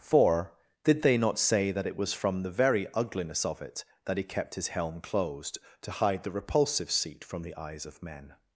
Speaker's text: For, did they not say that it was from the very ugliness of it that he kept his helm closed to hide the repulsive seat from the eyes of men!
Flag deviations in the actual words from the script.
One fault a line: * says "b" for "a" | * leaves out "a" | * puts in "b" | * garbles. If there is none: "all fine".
all fine